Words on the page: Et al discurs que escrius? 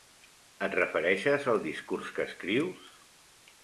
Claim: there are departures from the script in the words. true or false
true